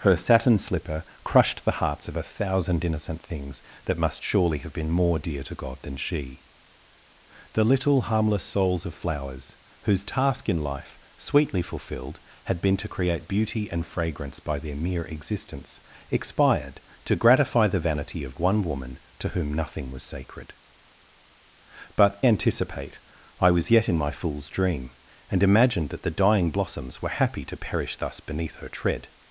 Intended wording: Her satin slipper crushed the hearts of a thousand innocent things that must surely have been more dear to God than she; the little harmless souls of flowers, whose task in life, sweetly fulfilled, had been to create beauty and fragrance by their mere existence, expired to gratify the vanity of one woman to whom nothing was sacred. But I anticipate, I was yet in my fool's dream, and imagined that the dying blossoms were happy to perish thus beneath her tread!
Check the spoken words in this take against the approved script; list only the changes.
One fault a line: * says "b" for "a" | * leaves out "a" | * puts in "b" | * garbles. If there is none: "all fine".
* leaves out "I"